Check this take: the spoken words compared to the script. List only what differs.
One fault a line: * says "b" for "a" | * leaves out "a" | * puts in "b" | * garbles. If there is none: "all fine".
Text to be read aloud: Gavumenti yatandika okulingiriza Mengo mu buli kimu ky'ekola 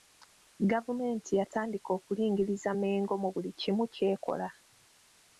all fine